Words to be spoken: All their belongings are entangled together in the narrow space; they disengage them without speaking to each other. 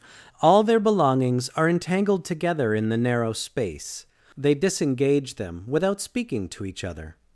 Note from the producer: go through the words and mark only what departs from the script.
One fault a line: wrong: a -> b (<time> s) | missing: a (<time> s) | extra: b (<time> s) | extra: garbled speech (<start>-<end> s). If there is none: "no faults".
no faults